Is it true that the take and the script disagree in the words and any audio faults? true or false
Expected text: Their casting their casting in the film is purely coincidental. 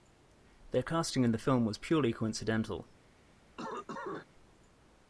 true